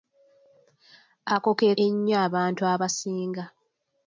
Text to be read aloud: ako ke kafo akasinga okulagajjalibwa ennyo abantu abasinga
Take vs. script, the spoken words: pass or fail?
fail